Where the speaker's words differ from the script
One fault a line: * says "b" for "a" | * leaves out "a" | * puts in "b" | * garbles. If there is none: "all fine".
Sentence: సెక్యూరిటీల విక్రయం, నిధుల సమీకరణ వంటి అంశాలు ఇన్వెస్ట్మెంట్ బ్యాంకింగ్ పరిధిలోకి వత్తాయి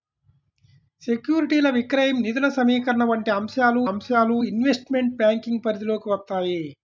* puts in "అంశాలు"